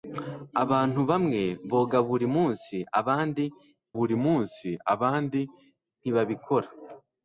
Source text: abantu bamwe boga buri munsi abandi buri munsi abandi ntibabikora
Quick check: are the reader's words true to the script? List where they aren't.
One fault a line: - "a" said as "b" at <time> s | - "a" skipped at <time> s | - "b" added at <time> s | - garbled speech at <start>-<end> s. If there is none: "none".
none